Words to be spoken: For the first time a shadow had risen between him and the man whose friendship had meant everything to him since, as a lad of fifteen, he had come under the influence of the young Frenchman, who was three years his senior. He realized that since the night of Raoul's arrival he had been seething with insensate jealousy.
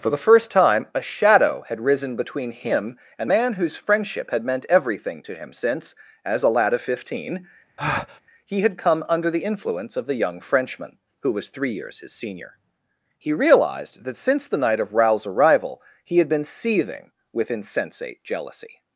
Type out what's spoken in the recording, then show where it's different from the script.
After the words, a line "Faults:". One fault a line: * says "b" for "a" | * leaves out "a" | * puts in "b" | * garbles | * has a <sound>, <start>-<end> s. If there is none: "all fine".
For the first time a shadow had risen between him and man whose friendship had meant everything to him since, as a lad of fifteen, he had come under the influence of the young Frenchman, who was three years his senior. He realized that since the night of Raoul's arrival he had been seething with insensate jealousy.
Faults:
* leaves out "the"
* has a breath, 7.8-8.2 s